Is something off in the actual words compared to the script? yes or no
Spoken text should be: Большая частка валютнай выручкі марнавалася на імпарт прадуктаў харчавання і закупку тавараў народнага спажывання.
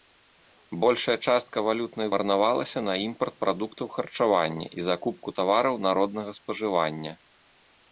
yes